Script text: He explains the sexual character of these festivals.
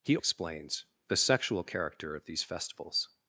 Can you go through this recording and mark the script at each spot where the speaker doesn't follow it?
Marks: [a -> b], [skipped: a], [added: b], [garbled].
He explains the sexual character of these festivals.